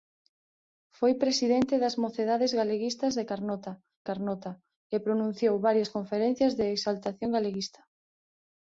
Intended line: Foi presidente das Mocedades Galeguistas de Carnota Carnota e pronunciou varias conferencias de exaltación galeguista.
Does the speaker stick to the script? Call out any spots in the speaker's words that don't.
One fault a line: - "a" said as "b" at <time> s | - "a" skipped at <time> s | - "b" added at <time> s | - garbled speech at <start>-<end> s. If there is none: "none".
none